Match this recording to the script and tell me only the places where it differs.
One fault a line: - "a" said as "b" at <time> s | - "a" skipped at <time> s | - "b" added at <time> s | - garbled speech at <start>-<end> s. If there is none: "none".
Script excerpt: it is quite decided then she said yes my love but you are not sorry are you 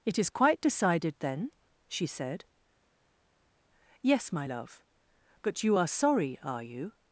- "not" skipped at 5.9 s